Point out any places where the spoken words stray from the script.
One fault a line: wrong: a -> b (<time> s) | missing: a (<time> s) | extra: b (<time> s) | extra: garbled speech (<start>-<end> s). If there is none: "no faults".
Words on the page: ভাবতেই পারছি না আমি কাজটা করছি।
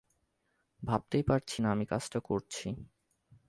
no faults